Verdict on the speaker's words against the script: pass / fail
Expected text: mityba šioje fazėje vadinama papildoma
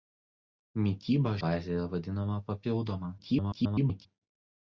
fail